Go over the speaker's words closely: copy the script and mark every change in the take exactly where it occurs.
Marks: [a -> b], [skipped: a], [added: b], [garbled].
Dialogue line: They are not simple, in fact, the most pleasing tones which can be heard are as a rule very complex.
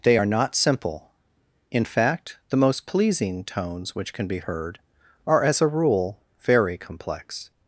They are not simple, in fact, the most pleasing tones which can be heard are as a rule very complex.